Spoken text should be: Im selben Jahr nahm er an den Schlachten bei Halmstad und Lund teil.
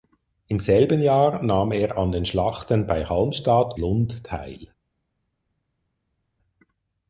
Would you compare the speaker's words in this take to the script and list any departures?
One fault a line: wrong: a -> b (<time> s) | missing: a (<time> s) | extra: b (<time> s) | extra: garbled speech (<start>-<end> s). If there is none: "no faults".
missing: und (3.8 s)